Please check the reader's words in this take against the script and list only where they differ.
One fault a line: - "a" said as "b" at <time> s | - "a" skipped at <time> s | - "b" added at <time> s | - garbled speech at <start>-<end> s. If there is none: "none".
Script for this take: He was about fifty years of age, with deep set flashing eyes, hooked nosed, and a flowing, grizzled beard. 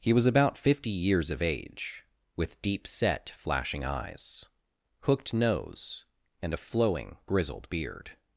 - "nosed" said as "nose" at 5.3 s